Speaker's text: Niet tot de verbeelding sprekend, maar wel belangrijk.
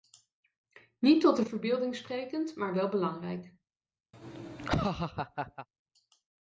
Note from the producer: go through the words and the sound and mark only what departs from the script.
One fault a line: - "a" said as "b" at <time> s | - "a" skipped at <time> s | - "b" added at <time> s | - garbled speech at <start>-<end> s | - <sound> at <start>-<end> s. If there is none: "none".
- laugh at 4.1-5.7 s